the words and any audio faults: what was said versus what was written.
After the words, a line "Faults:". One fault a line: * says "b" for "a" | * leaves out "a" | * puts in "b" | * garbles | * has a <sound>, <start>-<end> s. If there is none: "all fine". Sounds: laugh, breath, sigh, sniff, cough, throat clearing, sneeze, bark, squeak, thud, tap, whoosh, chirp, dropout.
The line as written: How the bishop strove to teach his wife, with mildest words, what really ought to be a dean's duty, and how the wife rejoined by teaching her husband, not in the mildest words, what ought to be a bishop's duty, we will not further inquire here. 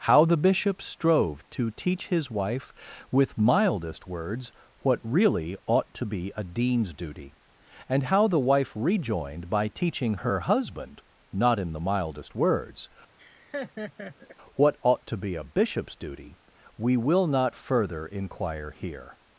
How the bishop strove to teach his wife, with mildest words, what really ought to be a dean's duty, and how the wife rejoined by teaching her husband, not in the mildest words, what ought to be a bishop's duty, we will not further inquire here.
Faults:
* has a laugh, 13.2-14.4 s